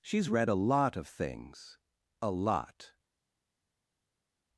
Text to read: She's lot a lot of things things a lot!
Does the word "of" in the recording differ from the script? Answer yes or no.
no